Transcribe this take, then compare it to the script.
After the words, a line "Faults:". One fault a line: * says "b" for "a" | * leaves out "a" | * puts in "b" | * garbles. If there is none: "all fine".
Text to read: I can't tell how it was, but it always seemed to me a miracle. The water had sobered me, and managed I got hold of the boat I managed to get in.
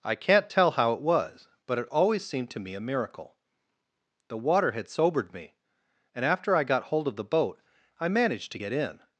I can't tell how it was, but it always seemed to me a miracle. The water had sobered me, and after I got hold of the boat I managed to get in.
Faults:
* says "after" for "managed"